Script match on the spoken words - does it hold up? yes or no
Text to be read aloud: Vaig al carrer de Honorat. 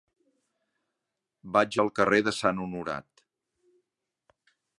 no